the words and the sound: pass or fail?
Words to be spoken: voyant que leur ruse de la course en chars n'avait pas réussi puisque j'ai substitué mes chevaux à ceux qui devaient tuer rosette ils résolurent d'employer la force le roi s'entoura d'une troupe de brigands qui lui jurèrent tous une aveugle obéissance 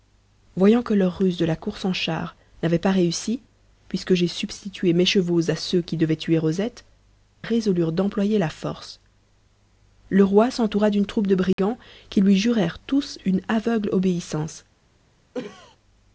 fail